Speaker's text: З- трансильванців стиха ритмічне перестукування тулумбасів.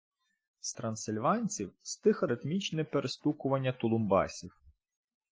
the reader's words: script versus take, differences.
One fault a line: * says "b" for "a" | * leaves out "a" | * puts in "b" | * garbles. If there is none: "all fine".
all fine